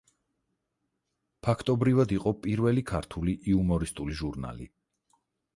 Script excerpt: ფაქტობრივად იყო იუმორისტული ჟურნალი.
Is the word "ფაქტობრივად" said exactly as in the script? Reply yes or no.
yes